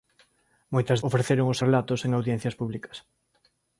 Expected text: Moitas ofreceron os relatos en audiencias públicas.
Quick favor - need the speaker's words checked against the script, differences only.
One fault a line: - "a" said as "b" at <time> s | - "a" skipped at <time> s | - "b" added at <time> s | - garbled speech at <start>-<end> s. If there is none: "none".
none